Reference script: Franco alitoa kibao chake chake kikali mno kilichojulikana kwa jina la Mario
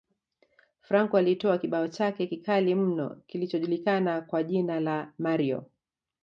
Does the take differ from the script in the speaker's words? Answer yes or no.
yes